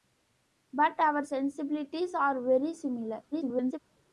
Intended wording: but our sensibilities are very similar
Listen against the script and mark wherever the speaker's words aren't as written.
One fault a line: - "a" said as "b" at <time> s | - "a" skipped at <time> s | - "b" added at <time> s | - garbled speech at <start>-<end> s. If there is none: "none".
- garbled speech at 3.3-3.8 s